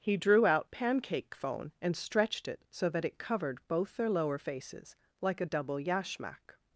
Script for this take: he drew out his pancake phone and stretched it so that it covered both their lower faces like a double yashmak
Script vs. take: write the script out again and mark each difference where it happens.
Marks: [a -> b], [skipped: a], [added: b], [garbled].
he drew out [skipped: his] pancake phone and stretched it so that it covered both their lower faces like a double yashmak